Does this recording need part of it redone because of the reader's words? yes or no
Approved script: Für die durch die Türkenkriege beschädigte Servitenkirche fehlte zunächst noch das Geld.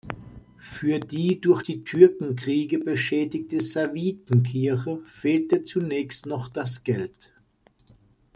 no